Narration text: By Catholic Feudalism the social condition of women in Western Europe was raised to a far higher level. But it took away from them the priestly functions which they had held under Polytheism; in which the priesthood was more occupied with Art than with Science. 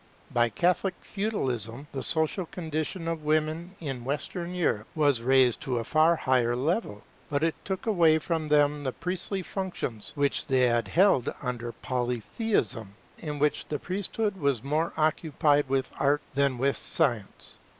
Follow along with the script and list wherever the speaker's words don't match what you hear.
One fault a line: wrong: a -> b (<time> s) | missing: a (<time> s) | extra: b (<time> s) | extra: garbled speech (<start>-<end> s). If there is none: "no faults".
no faults